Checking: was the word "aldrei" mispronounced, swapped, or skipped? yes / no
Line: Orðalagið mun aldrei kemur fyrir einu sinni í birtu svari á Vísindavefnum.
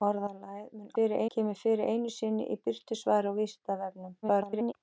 yes